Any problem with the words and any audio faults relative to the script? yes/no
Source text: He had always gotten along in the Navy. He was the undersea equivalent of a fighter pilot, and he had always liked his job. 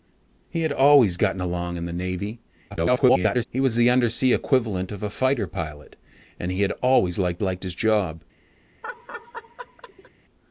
yes